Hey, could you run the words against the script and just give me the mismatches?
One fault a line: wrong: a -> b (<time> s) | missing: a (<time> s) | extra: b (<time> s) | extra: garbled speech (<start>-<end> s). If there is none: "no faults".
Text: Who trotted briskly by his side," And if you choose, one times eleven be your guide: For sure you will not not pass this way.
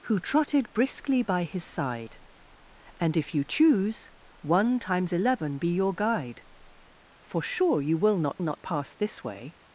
no faults